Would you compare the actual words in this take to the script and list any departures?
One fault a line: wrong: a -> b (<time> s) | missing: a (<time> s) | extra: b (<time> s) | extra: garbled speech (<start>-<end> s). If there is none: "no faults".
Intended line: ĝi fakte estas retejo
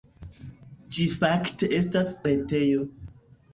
no faults